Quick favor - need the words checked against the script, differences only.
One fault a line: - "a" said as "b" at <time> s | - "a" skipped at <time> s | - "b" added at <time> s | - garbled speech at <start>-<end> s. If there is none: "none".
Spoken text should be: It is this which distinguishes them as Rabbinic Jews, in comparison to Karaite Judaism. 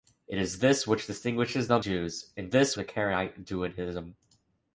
- "as Rabbinic" skipped at 1.8 s
- "comparison" said as "this" at 2.5 s